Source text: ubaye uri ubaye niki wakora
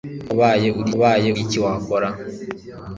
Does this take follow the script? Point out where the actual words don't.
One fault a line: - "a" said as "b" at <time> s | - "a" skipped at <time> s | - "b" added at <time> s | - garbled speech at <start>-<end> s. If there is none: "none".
none